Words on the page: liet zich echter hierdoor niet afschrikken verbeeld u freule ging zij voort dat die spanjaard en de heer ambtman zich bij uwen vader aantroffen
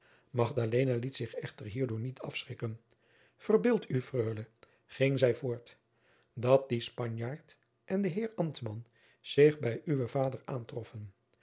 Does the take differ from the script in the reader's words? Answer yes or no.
no